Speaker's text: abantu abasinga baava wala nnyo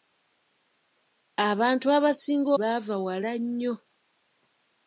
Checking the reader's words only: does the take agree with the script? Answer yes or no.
yes